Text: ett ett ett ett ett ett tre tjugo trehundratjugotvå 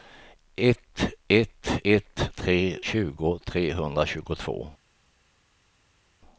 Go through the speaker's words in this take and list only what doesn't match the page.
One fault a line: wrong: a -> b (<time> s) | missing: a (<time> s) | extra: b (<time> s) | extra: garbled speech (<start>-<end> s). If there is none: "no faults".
missing: ett ett ett (2.3 s)